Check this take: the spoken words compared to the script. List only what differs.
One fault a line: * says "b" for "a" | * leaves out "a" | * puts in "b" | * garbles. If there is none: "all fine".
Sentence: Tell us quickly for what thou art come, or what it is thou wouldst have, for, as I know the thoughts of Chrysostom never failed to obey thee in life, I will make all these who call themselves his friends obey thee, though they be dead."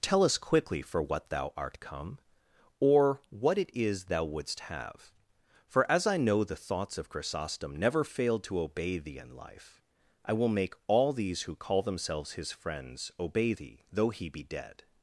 * says "he" for "they"